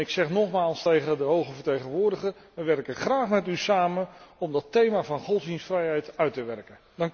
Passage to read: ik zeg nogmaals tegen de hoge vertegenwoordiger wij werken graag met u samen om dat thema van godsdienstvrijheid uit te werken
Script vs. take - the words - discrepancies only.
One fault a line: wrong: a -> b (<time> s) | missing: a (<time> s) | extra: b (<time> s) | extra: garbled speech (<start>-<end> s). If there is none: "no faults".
no faults